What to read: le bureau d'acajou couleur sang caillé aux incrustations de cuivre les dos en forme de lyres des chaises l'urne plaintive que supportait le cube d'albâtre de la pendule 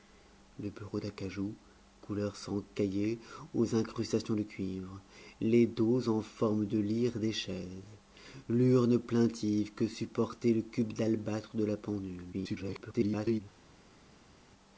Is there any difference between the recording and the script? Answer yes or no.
yes